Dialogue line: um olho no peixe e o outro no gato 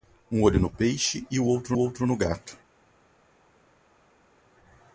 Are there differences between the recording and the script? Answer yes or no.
yes